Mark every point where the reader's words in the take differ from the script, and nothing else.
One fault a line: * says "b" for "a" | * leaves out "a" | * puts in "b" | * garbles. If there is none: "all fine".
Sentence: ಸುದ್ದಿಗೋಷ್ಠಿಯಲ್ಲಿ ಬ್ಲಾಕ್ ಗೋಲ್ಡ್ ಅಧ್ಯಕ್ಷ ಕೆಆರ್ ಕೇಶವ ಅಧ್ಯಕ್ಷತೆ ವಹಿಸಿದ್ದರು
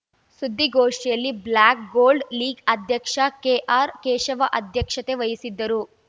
* puts in "ಲೀಗ್"